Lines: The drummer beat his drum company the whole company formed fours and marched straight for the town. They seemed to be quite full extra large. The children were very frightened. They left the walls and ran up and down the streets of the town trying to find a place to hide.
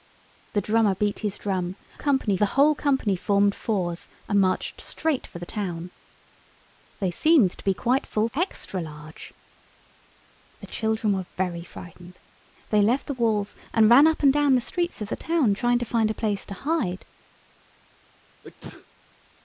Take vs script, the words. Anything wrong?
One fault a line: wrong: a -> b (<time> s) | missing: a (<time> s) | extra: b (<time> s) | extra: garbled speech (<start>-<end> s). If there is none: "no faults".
no faults